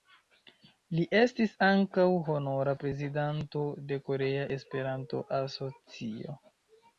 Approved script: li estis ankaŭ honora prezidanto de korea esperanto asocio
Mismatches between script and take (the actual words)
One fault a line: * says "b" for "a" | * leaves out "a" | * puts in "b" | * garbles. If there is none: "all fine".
all fine